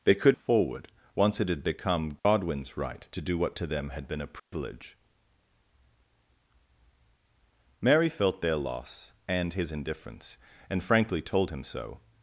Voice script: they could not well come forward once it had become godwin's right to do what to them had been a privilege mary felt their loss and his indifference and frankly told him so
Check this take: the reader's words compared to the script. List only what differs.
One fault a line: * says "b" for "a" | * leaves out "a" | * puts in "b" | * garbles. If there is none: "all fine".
* leaves out "not well come"